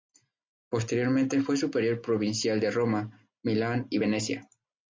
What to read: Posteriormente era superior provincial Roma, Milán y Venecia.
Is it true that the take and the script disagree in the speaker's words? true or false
true